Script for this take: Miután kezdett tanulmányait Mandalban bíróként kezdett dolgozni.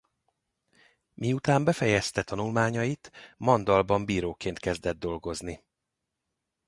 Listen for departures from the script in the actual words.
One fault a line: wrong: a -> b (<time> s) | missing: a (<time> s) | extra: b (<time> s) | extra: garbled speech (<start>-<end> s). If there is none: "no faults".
wrong: kezdett -> befejezte (1.6 s)